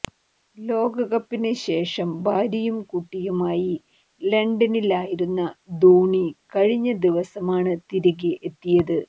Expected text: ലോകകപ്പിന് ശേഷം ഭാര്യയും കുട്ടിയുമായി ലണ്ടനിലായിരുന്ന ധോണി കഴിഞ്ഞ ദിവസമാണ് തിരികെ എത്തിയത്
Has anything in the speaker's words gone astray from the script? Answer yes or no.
no